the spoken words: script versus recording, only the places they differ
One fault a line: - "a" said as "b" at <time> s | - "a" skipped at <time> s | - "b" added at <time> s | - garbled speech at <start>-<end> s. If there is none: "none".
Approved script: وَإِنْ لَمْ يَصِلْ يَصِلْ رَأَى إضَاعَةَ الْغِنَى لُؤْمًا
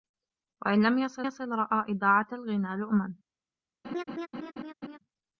none